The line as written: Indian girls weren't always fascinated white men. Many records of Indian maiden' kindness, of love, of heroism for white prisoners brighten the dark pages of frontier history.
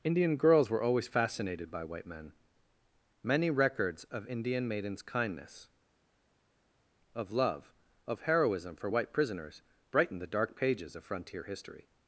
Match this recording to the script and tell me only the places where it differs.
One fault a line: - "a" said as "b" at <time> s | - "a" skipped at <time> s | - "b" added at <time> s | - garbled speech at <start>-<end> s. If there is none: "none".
- "weren't" said as "were" at 0.7 s
- "by" added at 1.7 s
- "maiden" said as "maidens" at 4.7 s